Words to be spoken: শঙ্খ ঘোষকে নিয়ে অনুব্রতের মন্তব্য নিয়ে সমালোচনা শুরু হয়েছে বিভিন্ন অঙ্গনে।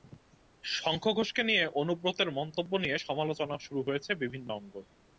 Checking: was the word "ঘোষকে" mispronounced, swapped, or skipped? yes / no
no